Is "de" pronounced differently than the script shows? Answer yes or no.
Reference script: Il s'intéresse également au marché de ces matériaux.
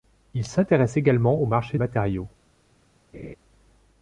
yes